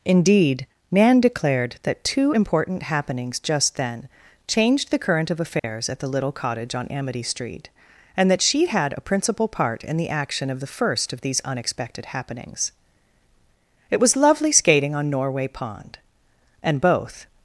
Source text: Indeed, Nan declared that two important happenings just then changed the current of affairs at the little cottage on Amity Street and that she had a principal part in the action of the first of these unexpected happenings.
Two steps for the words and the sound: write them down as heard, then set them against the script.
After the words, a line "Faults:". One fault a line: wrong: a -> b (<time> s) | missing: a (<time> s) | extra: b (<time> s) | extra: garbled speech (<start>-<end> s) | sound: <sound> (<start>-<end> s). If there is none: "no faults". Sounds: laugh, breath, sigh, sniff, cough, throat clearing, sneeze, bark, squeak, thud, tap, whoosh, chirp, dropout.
Indeed, Nan declared that two important happenings just then changed the current of affairs at the little cottage on Amity Street and that she had a principal part in the action of the first of these unexpected happenings. It was lovely skating on Norway Pond, and both
Faults:
sound: dropout (5.6-5.6 s)
extra: It was lovely skating on Norway Pond and both (13.9 s)